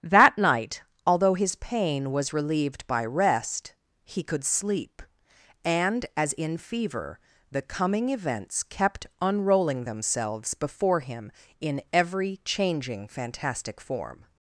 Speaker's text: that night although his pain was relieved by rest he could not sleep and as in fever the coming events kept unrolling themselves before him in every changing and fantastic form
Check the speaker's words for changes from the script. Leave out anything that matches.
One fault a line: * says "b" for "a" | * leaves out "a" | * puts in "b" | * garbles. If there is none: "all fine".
* leaves out "not"
* leaves out "and"